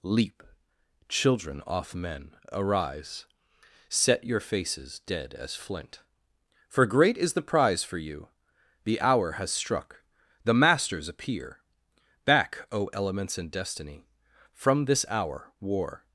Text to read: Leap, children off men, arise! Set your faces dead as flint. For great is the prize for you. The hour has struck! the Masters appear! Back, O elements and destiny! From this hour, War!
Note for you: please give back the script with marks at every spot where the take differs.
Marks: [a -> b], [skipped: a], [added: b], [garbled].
Leap, children off men, arise! Set your faces dead as flint. For great is the prize for you. The hour has struck! the Masters appear! Back, O elements and destiny! From this hour, War!